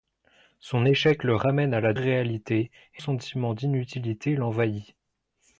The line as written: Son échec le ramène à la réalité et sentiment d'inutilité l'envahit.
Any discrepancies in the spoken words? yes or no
no